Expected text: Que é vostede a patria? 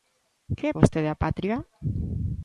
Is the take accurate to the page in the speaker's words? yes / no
yes